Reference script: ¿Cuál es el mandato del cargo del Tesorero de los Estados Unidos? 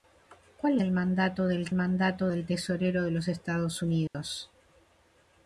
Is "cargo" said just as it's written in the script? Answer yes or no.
no